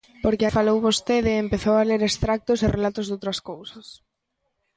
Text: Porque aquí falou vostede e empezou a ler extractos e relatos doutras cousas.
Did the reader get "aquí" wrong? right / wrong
wrong